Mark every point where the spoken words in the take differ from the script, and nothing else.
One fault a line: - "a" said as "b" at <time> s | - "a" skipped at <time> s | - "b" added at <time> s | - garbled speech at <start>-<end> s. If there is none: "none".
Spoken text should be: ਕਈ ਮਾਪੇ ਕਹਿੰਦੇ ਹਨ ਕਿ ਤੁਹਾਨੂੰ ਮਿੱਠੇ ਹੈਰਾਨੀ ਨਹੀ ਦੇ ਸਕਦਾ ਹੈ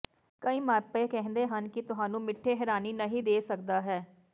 none